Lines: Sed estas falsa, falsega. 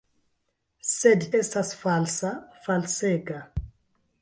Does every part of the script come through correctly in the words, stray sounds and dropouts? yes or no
yes